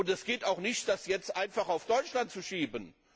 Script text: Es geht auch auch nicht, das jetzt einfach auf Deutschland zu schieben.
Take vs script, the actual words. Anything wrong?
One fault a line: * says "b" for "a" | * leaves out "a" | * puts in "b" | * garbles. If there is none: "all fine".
* leaves out "auch"